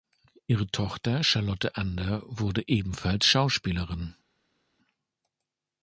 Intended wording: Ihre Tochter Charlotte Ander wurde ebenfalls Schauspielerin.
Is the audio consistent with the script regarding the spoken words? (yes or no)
yes